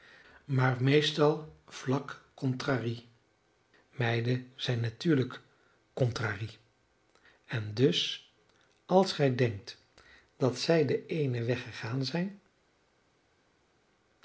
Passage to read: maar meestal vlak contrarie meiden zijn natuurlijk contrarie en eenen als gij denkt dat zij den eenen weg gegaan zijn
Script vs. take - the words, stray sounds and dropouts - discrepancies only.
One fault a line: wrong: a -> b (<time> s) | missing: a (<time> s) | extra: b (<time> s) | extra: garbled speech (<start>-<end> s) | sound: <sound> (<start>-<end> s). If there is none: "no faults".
wrong: eenen -> dus (7.7 s)